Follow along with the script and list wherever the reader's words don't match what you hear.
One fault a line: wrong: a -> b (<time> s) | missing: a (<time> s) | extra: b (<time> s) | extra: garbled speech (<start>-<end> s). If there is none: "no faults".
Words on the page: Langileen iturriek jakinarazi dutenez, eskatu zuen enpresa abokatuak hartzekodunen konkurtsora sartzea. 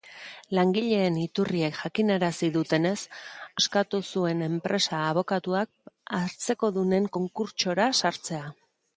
no faults